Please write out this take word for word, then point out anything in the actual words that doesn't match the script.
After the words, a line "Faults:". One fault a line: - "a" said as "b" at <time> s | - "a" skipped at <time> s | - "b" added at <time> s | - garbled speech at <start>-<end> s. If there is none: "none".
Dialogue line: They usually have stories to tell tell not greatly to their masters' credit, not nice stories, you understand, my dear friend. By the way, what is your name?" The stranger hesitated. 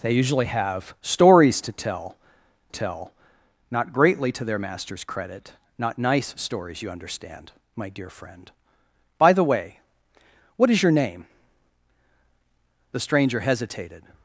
They usually have stories to tell tell not greatly to their masters' credit, not nice stories, you understand, my dear friend. By the way, what is your name?" The stranger hesitated.
Faults:
none